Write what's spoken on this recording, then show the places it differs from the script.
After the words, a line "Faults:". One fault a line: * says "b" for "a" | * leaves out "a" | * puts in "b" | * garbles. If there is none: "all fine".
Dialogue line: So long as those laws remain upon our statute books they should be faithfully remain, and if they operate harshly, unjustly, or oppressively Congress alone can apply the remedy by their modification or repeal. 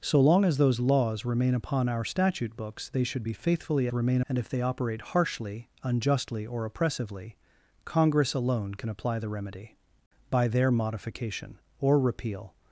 So long as those laws remain upon our statute books they should be faithfully remain, and if they operate harshly, unjustly, or oppressively Congress alone can apply the remedy by their modification or repeal.
Faults:
all fine